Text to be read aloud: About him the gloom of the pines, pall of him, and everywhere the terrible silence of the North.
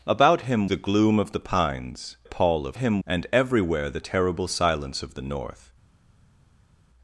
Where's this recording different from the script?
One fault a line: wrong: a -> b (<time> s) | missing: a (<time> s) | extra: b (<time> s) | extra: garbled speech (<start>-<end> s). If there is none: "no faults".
no faults